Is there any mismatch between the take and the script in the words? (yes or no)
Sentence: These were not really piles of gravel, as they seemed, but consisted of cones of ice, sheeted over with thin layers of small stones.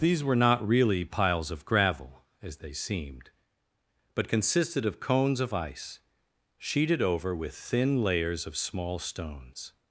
no